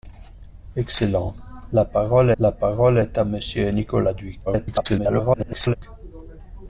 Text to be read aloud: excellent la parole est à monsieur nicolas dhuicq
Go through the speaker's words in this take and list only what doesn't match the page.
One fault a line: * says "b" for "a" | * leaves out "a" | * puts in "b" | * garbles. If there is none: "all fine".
* puts in "la parole"
* garbles